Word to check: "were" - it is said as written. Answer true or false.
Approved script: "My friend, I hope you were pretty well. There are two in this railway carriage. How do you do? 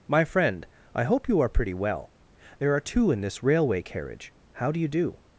false